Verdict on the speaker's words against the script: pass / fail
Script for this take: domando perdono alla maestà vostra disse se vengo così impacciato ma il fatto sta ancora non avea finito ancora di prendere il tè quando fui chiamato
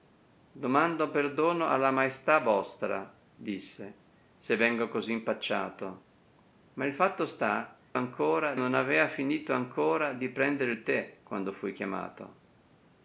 pass